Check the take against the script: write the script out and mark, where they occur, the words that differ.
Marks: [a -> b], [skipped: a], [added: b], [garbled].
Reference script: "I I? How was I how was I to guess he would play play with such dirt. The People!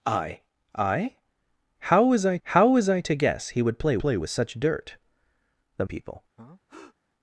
"I I? How was I how was I to guess he would play play with such dirt. The People!